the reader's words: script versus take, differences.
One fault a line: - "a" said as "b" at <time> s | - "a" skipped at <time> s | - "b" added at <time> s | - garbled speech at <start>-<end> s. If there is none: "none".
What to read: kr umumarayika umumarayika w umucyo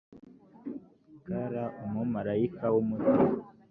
- "umumarayika" skipped at 2.6 s